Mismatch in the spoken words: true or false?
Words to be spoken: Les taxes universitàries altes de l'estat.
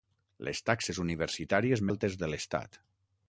false